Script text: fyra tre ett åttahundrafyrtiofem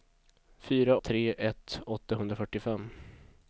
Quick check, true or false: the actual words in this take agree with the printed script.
true